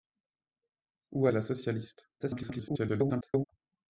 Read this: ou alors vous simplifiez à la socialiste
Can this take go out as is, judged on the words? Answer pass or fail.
fail